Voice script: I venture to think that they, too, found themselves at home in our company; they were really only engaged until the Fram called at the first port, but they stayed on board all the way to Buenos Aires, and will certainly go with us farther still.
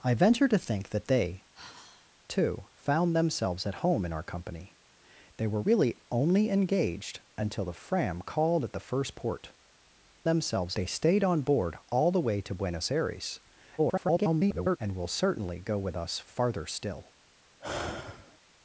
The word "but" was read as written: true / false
false